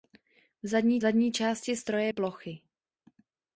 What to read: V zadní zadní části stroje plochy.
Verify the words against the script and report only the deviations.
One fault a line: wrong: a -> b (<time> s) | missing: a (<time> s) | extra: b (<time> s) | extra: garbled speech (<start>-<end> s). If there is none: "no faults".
no faults